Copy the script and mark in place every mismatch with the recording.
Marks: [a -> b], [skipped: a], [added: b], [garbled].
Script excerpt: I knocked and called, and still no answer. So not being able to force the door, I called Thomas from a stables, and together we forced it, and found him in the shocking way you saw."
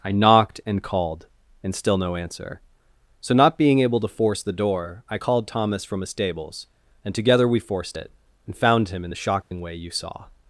I knocked and called, and still no answer. So not being able to force the door, I called Thomas from a stables, and together we forced it, and found him in the shocking way you saw."